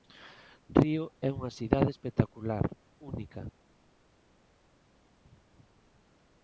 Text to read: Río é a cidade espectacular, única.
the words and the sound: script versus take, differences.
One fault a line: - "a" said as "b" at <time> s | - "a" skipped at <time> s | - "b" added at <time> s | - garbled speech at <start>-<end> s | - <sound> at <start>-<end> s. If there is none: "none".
- "a" said as "unha" at 1.4 s